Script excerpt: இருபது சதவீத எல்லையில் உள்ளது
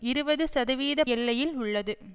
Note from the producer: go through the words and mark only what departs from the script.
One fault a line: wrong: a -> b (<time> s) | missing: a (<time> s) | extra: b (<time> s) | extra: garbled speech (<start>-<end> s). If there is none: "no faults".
no faults